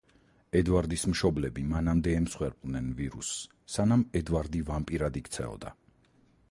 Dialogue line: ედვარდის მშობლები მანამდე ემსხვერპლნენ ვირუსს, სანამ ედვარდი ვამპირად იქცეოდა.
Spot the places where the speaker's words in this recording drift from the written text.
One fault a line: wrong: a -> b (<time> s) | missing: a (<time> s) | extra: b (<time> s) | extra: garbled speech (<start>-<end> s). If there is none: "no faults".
no faults